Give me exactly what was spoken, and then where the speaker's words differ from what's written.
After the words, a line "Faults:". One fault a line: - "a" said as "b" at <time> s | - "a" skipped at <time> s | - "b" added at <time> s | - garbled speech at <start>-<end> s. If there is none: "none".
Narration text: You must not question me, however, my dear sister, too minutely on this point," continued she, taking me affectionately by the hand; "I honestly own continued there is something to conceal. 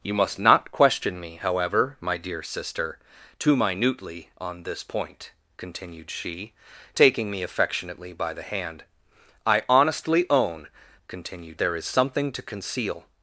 You must not question me, however, my dear sister, too minutely on this point," continued she, taking me affectionately by the hand; "I honestly own continued there is something to conceal.
Faults:
none